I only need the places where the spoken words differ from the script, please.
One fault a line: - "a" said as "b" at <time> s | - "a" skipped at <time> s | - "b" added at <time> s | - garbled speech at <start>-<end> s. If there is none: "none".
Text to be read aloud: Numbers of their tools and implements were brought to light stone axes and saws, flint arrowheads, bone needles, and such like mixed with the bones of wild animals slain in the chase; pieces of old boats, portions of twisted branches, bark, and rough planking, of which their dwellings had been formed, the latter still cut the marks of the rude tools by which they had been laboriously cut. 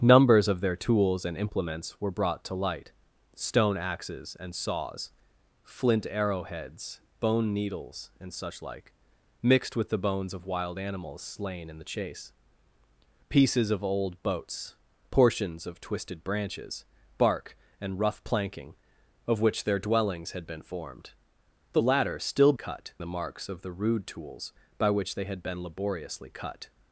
none